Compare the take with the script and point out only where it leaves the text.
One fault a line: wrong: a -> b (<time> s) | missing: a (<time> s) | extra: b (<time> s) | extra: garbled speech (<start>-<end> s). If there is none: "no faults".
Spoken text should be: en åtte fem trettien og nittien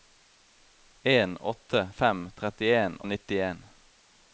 no faults